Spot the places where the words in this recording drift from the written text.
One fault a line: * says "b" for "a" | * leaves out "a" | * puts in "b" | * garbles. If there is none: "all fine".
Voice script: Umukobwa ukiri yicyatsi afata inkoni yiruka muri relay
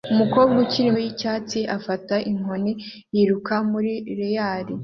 all fine